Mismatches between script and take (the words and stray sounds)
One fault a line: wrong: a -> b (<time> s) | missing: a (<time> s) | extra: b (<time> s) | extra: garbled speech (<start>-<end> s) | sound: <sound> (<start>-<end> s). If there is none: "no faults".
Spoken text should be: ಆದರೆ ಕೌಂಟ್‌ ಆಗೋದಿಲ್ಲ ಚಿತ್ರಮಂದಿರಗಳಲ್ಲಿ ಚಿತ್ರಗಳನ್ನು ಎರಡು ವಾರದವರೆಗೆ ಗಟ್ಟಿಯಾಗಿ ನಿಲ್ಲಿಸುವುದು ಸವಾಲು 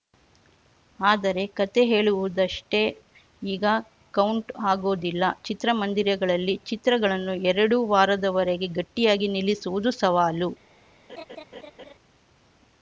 extra: ಕತೆ ಹೇಳುವುದಷ್ಟೇ ಈಗ (1.6 s)
sound: laugh (11.1-11.9 s)